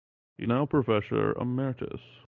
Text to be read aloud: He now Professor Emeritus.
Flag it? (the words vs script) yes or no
no